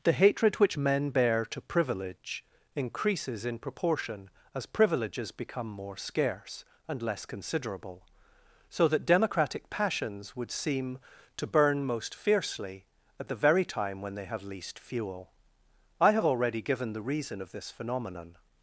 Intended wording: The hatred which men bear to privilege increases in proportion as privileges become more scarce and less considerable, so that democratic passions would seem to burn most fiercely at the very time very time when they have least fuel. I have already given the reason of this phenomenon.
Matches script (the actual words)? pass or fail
fail